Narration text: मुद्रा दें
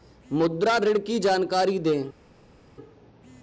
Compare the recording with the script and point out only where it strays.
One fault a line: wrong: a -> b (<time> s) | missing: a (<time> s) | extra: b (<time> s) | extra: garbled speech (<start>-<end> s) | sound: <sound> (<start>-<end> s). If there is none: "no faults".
extra: ऋण की जानकारी (0.8 s)